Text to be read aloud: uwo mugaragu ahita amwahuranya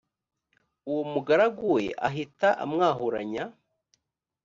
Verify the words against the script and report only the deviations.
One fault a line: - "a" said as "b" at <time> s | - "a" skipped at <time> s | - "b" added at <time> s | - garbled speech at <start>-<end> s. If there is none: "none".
- "we" added at 1.7 s